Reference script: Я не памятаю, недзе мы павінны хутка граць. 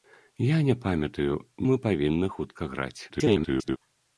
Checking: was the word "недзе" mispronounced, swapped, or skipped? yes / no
yes